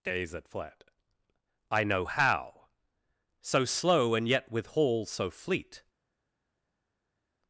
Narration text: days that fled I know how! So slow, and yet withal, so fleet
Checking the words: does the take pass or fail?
pass